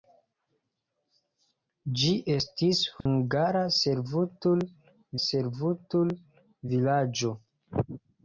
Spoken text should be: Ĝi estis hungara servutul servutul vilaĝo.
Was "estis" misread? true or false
false